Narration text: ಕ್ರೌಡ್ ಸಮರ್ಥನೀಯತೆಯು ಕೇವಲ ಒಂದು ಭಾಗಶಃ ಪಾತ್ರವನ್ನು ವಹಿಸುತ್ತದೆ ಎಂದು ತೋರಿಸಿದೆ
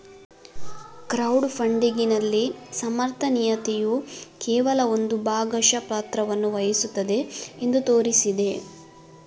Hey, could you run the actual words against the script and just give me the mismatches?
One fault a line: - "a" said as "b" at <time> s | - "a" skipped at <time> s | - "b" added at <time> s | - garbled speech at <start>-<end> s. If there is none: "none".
- "ಫಂಡಿಗಿನಲ್ಲಿ" added at 1.5 s